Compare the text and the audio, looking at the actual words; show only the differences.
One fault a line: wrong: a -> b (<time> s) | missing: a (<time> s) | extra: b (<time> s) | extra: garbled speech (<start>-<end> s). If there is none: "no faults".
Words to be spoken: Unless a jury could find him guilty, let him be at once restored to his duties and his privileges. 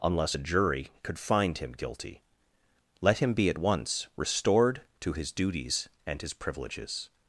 no faults